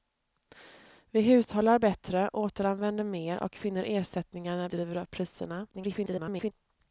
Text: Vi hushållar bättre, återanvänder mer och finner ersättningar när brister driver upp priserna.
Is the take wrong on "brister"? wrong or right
wrong